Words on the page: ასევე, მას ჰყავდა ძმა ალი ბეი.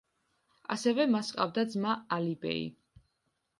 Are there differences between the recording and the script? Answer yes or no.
no